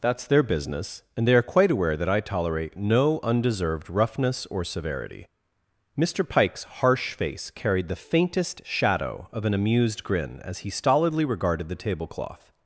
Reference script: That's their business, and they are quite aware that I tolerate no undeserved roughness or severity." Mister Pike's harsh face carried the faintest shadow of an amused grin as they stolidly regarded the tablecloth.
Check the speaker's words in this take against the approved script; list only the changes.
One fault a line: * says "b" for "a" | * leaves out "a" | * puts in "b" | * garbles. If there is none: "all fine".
* says "he" for "they"